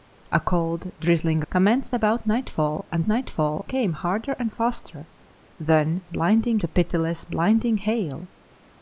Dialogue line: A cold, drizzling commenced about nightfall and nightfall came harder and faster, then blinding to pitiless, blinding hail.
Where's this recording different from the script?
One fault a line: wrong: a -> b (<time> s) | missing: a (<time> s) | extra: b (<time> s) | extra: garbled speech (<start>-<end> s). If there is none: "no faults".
no faults